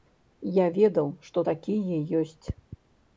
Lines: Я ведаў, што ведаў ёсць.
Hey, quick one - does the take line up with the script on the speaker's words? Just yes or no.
no